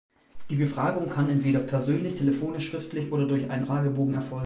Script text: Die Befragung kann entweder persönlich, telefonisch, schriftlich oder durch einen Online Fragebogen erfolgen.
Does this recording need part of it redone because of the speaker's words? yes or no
yes